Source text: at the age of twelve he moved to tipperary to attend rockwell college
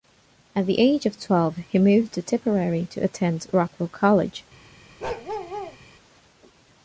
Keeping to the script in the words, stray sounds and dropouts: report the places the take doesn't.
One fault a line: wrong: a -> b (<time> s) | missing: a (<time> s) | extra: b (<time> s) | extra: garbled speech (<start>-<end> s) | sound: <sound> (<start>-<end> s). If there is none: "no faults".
sound: bark (5.0-5.8 s)